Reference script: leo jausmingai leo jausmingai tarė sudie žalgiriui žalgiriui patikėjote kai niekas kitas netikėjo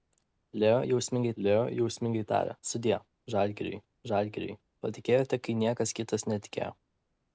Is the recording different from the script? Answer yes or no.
no